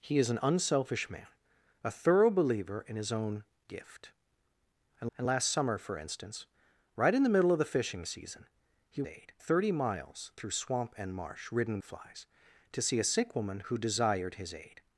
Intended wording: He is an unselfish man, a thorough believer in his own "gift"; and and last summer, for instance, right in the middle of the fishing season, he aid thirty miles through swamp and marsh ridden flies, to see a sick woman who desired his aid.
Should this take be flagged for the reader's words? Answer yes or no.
no